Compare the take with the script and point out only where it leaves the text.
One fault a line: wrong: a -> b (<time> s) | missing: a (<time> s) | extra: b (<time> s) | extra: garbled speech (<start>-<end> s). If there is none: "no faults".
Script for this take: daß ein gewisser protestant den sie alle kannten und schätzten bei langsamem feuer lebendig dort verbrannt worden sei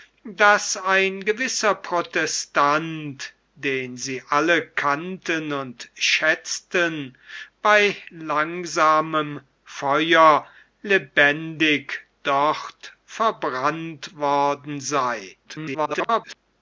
extra: garbled speech (15.4-16.4 s)